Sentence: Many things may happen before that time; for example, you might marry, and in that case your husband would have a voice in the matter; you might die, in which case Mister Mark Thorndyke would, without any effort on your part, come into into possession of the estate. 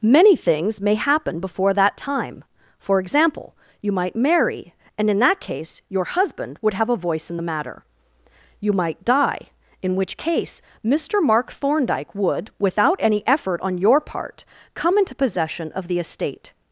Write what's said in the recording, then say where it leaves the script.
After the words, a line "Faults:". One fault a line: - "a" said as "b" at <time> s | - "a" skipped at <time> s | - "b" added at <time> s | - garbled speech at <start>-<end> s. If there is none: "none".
Many things may happen before that time; for example, you might marry, and in that case your husband would have a voice in the matter; you might die, in which case Mister Mark Thorndyke would, without any effort on your part, come into possession of the estate.
Faults:
- "into" skipped at 15.2 s